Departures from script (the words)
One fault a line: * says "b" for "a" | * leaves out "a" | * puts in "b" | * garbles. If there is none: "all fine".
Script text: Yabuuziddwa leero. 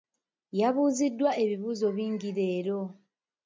* puts in "ebibuuzo bingi"